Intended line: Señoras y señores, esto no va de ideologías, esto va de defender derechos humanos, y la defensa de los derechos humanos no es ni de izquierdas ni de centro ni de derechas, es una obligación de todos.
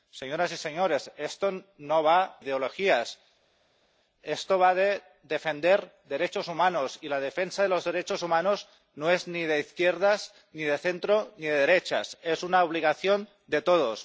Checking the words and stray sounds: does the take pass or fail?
fail